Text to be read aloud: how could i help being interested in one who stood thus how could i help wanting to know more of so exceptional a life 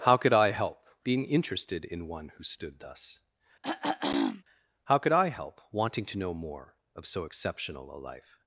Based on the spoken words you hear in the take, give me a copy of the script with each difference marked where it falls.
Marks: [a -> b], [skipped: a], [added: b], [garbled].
how could i help being interested in one who stood thus how could i help wanting to know more of so exceptional a life